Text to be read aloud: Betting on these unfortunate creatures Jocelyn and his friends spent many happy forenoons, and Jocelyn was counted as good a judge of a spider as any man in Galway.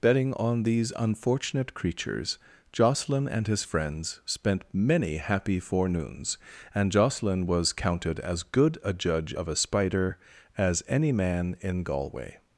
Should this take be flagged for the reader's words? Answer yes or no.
no